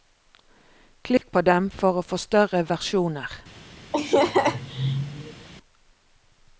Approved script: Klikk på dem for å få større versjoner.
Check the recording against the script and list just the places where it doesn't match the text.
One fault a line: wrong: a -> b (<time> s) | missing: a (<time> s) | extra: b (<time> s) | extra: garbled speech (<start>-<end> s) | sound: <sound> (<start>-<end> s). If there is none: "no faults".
sound: dropout (1.2-1.2 s)
sound: laugh (3.9-5.5 s)